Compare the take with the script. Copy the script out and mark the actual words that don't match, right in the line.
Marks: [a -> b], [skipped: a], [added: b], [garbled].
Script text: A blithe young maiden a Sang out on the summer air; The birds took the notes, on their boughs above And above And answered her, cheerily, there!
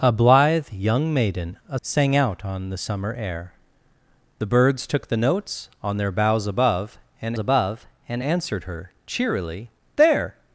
A blithe young maiden a Sang out on the summer air; The birds took the notes, on their boughs above And above And answered her, cheerily, there!